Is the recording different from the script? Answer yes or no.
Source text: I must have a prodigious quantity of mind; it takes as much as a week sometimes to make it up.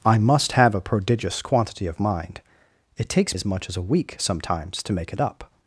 no